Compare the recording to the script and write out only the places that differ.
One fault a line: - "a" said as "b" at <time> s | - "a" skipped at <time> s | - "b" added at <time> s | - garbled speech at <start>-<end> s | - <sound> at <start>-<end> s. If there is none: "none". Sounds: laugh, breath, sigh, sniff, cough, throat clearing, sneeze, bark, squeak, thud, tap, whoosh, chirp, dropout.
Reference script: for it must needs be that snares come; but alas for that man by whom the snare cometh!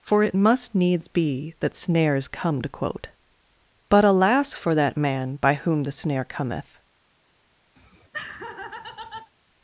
- "to quote" added at 2.6 s
- laugh at 7.8-9.3 s